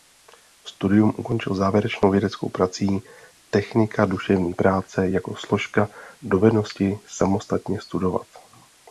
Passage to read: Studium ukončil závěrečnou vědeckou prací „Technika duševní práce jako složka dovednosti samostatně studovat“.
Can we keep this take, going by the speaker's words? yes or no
yes